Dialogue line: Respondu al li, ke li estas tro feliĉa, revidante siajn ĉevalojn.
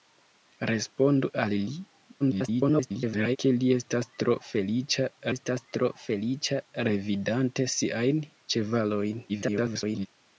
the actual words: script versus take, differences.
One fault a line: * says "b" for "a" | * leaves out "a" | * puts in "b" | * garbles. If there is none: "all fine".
* garbles
* puts in "estas tro feliĉa"
* garbles